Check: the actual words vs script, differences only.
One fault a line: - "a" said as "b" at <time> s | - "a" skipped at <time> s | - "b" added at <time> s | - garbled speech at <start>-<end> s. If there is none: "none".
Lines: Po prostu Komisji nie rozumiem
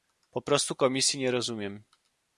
none